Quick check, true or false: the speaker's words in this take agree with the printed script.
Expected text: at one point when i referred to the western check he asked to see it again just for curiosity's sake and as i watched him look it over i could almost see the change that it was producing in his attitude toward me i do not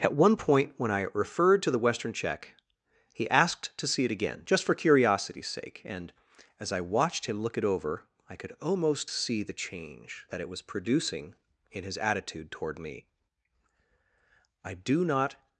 true